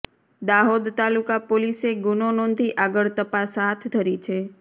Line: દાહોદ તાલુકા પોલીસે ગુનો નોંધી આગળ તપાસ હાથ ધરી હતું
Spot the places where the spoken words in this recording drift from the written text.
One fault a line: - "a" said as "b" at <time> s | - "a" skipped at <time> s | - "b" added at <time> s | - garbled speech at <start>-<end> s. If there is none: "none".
- "હતું" said as "છે" at 4.2 s